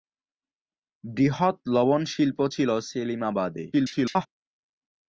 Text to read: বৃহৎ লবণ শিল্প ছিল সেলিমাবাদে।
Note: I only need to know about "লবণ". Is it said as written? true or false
true